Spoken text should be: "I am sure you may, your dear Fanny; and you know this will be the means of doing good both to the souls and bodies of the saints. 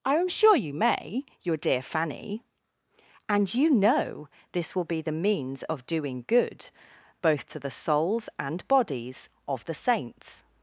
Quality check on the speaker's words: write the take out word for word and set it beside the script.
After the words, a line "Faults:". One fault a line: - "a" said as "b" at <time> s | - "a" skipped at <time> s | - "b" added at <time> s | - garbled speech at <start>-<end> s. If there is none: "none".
"I am sure you may, your dear Fanny; and you know this will be the means of doing good both to the souls and bodies of the saints.
Faults:
none